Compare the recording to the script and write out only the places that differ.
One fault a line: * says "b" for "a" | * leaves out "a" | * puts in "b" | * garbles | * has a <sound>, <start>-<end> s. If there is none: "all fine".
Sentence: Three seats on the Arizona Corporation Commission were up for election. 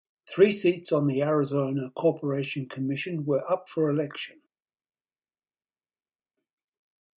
all fine